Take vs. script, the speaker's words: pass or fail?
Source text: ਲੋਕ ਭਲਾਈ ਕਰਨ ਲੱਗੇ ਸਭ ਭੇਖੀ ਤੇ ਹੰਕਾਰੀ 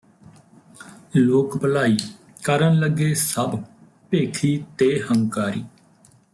pass